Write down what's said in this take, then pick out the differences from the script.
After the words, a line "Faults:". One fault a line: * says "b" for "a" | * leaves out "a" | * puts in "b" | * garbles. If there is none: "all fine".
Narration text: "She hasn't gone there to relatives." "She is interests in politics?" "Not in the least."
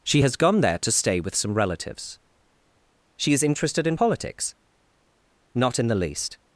"She has gone there to stay with some relatives." "She is interested in politics?" "Not in the least."
Faults:
* says "has" for "hasn't"
* puts in "stay with some"
* says "interested" for "interests"